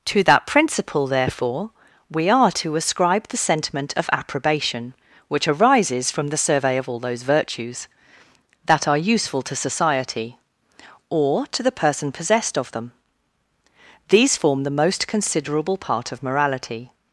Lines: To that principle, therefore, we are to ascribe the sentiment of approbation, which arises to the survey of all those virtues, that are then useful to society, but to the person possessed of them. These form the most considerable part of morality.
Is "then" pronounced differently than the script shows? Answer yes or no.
yes